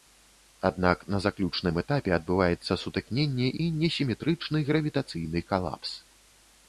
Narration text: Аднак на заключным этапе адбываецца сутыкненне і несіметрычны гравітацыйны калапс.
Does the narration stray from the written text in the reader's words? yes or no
no